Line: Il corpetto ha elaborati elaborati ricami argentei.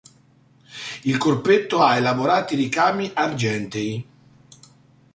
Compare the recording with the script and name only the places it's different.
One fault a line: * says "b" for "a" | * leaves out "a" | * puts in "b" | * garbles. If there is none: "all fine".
* leaves out "elaborati"